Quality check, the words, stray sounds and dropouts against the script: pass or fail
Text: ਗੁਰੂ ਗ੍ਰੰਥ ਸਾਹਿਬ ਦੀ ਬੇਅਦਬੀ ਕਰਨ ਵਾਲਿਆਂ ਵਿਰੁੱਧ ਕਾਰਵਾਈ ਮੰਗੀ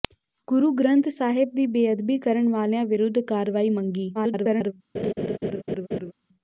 fail